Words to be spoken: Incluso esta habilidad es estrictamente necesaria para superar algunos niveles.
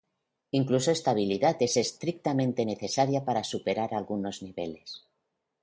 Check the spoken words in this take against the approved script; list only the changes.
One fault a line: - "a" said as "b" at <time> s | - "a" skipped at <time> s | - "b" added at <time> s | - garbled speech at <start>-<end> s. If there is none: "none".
none